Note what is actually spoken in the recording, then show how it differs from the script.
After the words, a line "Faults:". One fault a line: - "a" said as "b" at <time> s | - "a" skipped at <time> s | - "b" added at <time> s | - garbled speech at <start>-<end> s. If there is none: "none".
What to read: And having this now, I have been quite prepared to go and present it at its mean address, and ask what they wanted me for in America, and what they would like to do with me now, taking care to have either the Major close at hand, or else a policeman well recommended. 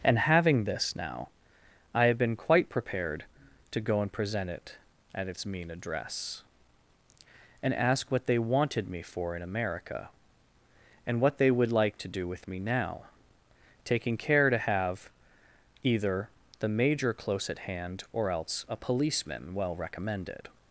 And having this now, I have been quite prepared to go and present it at its mean address, and ask what they wanted me for in America, and what they would like to do with me now, taking care to have either the Major close at hand, or else a policeman well recommended.
Faults:
none